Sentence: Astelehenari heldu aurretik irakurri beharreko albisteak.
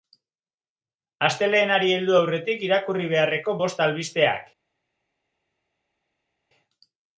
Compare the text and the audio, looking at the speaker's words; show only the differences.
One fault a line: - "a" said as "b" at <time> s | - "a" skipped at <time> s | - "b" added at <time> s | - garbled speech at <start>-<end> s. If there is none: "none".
- "bost" added at 3.6 s